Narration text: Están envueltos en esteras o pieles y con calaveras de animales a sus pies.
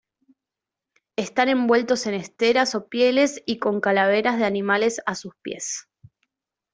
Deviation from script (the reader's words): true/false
false